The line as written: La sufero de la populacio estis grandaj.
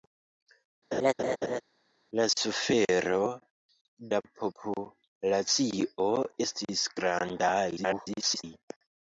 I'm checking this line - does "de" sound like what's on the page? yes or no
no